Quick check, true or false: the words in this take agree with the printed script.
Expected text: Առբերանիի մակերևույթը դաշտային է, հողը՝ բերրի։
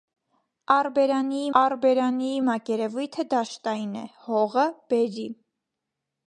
false